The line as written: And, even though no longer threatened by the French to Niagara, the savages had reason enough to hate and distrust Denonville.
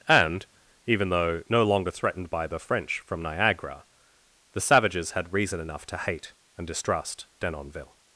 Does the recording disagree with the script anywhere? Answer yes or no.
yes